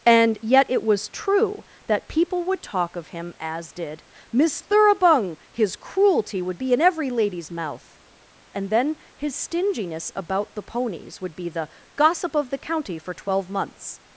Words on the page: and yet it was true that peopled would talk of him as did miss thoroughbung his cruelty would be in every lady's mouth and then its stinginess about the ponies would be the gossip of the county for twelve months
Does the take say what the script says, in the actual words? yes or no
no